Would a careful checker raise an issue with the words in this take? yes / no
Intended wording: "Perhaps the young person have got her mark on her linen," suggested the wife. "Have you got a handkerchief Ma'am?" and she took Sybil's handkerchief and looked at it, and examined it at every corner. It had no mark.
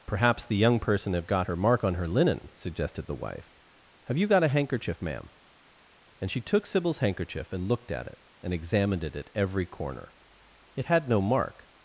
no